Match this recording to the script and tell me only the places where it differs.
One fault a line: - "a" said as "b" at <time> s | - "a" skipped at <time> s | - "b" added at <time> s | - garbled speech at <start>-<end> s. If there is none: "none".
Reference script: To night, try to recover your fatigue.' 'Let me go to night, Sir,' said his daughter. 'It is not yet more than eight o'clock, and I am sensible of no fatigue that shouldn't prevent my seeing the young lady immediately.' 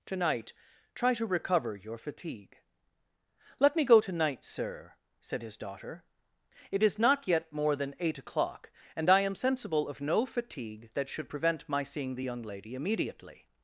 - "shouldn't" said as "should" at 11.1 s